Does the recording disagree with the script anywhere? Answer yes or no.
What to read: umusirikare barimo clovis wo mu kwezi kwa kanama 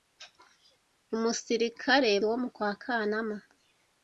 yes